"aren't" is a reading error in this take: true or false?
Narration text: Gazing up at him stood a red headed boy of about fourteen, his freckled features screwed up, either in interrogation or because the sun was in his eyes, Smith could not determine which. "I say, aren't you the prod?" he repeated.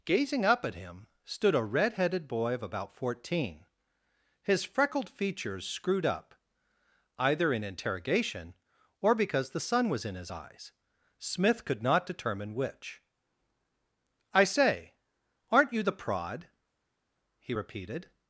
false